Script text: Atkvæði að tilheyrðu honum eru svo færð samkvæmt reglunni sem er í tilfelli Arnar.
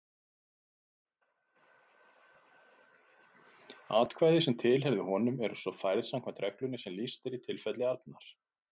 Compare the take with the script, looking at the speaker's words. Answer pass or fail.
fail